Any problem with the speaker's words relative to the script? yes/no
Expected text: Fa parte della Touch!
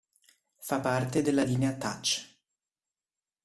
yes